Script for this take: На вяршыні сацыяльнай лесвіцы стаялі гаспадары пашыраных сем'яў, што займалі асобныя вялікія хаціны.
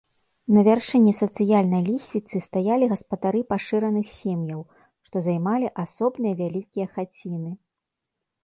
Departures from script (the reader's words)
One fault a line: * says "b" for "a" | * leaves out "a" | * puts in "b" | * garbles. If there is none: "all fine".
all fine